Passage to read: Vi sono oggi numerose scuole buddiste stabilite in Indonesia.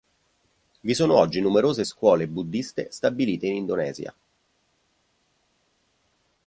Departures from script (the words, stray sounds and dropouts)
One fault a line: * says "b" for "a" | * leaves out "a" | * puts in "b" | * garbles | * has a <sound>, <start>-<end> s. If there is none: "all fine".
all fine